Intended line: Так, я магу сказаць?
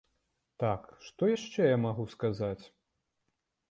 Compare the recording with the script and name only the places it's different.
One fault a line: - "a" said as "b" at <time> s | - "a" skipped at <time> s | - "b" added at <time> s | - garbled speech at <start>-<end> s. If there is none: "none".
- "што яшчэ" added at 1.1 s